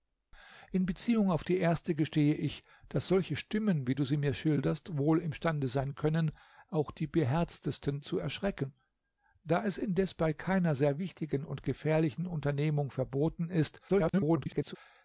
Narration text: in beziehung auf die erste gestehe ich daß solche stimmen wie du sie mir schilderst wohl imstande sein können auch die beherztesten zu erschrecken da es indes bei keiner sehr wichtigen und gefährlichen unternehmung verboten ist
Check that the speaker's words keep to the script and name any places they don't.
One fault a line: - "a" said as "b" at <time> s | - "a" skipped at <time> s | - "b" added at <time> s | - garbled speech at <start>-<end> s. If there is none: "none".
- garbled speech at 13.9-14.8 s